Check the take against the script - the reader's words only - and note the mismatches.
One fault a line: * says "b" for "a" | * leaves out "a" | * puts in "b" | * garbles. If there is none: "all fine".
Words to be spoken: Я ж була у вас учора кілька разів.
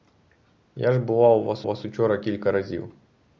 * puts in "вас"